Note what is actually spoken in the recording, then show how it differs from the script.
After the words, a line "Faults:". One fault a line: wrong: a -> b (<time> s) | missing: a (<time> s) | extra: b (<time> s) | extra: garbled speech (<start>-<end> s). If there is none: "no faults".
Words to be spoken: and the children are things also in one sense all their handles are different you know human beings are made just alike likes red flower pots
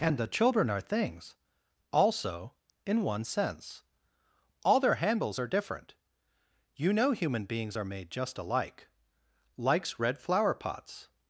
and the children are things also in one sense all their handles are different you know human beings are made just alike likes red flower pots
Faults:
no faults